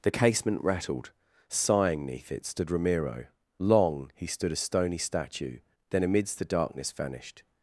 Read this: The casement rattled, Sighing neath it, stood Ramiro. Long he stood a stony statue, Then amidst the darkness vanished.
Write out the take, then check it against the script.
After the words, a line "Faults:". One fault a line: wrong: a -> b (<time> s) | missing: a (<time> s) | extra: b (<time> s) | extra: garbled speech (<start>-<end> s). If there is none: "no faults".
The casement rattled, Sighing neath it, stood Ramiro. Long he stood a stony statue, Then amidst the darkness vanished.
Faults:
no faults